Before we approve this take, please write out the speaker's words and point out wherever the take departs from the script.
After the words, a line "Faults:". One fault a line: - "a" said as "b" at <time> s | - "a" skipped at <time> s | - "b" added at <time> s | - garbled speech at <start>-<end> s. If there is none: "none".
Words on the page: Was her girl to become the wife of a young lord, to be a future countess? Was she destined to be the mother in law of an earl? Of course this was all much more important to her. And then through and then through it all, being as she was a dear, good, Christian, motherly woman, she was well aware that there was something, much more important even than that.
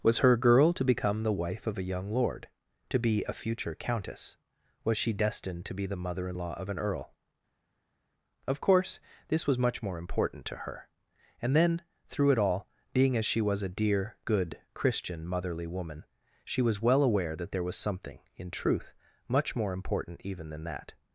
Was her girl to become the wife of a young lord, to be a future countess? Was she destined to be the mother in law of an earl? Of course this was much more important to her. And then through it all, being as she was a dear, good, Christian, motherly woman, she was well aware that there was something, in truth, much more important even than that.
Faults:
- "all" skipped at 9.6 s
- "and then through" skipped at 12.3 s
- "in truth" added at 18.4 s